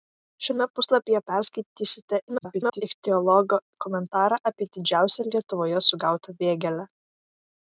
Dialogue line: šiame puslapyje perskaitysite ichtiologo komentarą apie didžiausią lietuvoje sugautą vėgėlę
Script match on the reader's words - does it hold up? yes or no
no